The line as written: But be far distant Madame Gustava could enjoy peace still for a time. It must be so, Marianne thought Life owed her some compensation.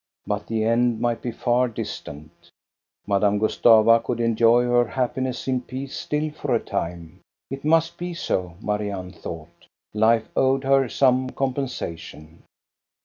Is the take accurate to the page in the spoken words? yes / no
no